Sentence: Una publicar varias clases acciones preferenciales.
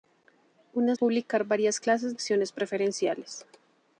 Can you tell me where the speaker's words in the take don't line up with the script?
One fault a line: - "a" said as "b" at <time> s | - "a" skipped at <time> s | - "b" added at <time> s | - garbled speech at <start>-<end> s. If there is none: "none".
none